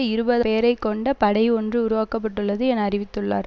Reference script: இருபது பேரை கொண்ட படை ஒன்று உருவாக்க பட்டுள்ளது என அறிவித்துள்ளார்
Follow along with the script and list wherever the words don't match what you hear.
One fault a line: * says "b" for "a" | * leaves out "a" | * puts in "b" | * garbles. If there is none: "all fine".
all fine